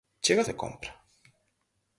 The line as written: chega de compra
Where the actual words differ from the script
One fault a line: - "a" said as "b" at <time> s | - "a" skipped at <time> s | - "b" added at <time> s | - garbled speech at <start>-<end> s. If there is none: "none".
none